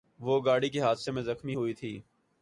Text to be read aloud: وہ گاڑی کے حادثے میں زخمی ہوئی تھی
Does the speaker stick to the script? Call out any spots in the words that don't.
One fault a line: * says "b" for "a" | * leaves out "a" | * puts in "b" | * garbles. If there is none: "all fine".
all fine